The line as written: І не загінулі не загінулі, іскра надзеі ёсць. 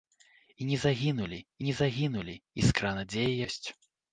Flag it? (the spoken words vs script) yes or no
no